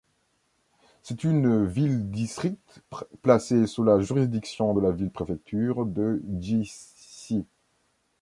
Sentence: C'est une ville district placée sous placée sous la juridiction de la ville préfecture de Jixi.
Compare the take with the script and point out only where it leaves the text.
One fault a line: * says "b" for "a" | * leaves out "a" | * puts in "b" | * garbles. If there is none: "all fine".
* leaves out "placée sous"